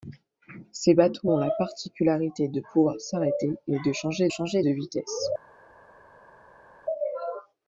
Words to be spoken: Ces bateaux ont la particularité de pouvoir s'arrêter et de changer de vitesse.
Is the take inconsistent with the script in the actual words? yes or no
yes